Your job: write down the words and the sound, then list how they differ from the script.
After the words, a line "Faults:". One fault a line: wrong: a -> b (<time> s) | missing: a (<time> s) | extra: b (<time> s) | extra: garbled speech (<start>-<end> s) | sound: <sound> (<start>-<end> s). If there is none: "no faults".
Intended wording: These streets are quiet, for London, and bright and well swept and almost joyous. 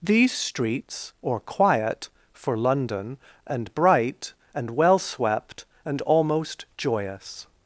These streets or quiet, for London, and bright and well swept and almost joyous.
Faults:
wrong: are -> or (1.2 s)